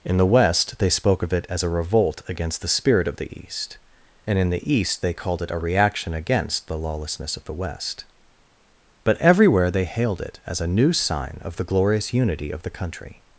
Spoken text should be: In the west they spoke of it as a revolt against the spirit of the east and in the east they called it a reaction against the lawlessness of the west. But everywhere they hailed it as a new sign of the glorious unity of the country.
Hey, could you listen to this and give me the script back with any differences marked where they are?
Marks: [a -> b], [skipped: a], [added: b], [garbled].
In the west they spoke of it as a revolt against the spirit of the east and in the east they called it a reaction against the lawlessness of the west. But everywhere they hailed it as a new sign of the glorious unity of the country.